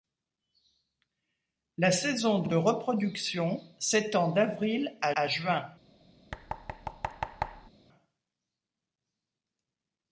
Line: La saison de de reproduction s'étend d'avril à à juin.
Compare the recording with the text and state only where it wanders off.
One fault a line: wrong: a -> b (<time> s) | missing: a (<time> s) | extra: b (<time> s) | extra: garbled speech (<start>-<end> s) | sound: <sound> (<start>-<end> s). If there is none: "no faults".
sound: thud (6.3-7.7 s)